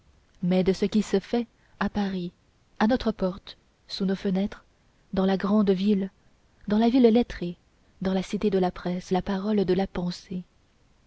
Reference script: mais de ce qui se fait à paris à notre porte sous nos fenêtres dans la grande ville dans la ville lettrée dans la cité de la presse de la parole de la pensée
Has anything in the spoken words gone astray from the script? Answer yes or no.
yes